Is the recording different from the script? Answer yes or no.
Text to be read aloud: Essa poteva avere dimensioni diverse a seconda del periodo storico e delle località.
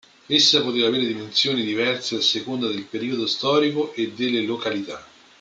no